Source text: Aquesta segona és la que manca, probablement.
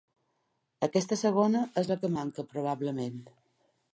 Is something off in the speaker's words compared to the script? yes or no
no